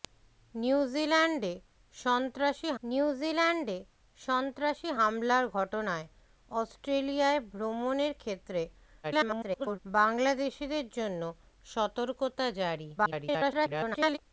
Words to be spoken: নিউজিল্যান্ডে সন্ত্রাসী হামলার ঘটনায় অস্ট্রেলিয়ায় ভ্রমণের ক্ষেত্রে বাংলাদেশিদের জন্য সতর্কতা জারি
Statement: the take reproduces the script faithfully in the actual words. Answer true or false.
false